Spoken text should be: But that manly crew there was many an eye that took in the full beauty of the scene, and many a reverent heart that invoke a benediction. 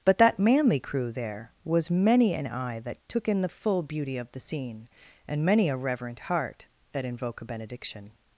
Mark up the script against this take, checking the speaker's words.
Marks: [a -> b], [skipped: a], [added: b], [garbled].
But that manly crew there was many an eye that took in the full beauty of the scene, and many a reverent heart that invoke a benediction.